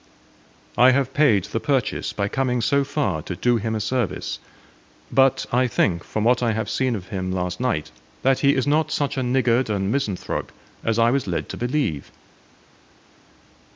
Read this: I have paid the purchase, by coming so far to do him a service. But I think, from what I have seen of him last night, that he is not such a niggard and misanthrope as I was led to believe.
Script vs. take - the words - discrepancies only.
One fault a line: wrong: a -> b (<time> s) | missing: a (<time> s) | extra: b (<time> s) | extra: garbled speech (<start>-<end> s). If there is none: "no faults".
no faults